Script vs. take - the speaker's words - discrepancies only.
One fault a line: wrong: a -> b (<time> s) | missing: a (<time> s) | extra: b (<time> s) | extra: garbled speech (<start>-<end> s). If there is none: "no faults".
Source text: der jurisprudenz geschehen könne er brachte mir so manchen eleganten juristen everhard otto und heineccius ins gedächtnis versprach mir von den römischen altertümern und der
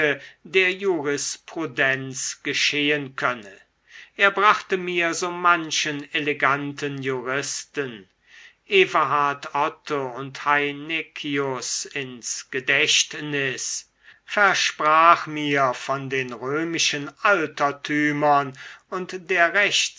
no faults